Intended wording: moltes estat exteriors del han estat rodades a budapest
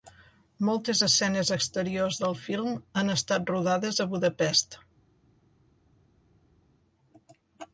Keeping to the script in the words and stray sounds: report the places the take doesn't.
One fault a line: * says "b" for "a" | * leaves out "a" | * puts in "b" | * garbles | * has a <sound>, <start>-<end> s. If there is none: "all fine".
* says "escenes" for "estat"
* puts in "film"